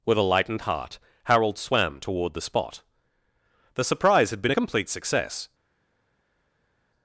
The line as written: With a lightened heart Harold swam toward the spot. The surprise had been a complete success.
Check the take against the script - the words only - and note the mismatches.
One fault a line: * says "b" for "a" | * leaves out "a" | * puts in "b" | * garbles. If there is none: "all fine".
all fine